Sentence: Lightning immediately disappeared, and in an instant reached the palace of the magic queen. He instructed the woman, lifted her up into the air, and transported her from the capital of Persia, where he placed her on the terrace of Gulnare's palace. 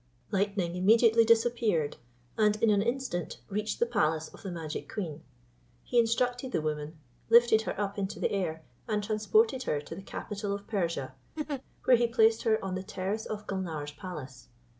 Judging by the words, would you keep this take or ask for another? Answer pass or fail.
fail